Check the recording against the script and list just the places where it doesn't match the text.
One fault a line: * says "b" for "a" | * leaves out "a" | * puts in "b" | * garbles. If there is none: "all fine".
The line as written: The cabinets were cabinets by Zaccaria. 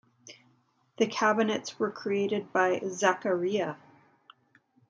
* says "created" for "cabinets"